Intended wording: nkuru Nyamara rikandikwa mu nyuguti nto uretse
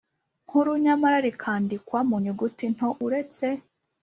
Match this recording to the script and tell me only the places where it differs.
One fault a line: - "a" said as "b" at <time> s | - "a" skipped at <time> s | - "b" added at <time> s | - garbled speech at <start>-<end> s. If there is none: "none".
none